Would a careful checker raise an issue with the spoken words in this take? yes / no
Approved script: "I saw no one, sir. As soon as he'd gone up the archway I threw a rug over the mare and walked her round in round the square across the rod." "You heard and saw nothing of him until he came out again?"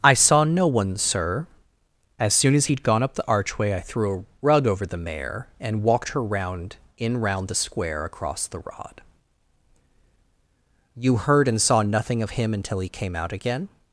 no